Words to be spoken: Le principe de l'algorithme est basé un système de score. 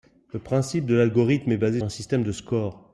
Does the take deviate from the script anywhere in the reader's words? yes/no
no